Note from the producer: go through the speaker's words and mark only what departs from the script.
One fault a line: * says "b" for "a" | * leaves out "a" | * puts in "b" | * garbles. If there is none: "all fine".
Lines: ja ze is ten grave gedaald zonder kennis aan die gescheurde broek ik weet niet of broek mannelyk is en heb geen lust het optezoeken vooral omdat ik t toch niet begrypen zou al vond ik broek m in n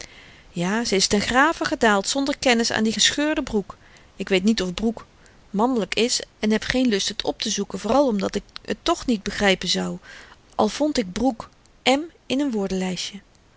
all fine